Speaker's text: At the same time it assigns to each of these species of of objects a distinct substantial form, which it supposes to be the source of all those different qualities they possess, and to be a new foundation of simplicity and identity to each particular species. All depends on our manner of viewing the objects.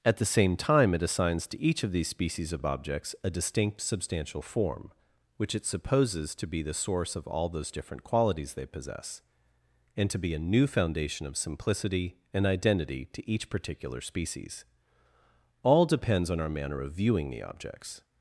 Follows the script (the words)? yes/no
yes